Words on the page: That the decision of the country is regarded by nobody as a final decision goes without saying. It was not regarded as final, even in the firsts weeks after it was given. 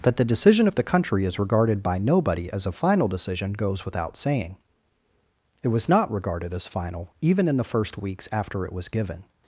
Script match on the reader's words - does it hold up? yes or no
no